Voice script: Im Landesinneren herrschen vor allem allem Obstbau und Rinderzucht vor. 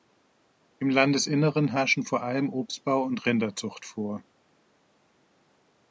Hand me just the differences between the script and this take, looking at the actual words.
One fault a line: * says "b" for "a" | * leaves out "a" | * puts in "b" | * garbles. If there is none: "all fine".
* leaves out "allem"